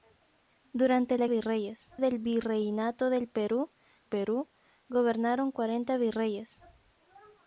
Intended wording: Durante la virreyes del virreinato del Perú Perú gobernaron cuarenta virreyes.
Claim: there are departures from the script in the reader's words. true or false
false